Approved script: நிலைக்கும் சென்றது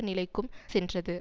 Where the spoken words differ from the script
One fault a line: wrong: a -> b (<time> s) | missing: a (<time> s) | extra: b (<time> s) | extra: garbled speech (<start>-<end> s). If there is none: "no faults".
no faults